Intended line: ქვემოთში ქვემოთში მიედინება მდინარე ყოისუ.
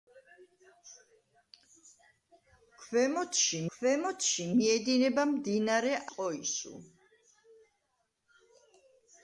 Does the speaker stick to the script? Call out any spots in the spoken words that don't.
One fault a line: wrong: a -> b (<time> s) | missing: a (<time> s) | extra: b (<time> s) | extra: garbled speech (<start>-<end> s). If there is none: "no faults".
no faults